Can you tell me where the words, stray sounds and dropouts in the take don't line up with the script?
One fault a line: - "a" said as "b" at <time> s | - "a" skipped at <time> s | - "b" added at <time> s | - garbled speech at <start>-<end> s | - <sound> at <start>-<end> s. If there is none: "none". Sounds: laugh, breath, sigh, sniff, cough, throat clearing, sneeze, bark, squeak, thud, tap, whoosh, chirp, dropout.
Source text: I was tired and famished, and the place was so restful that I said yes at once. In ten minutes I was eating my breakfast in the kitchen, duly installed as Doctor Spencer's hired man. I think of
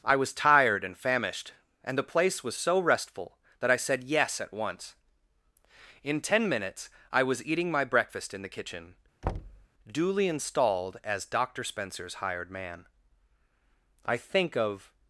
- thud at 9.2-9.7 s